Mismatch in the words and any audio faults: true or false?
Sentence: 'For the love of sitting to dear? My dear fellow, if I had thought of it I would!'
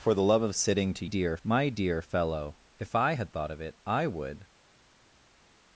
false